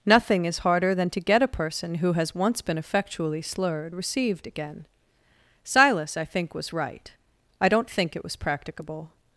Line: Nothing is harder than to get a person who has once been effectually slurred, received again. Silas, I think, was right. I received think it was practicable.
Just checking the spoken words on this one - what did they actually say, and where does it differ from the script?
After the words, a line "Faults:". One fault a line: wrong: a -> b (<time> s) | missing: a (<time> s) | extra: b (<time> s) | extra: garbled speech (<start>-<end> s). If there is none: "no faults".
Nothing is harder than to get a person who has once been effectually slurred, received again. Silas, I think, was right. I don't think it was practicable.
Faults:
wrong: received -> don't (7.7 s)